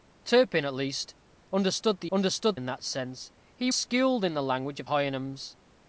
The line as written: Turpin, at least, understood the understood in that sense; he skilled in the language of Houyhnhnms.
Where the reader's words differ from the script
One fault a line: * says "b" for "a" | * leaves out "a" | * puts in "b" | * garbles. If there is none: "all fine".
all fine